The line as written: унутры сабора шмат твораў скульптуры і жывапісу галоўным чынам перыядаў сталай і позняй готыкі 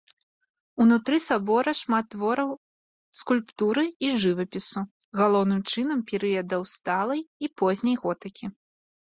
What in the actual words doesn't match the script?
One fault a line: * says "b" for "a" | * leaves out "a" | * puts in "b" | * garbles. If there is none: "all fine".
all fine